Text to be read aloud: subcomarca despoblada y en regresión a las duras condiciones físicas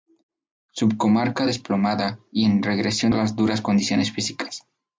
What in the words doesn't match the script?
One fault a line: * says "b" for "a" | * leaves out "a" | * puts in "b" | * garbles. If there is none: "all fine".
all fine